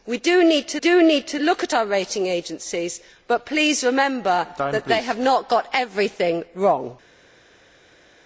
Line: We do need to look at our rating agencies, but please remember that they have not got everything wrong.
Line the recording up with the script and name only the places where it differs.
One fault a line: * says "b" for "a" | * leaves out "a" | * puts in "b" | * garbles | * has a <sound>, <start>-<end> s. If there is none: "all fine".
* puts in "do need to"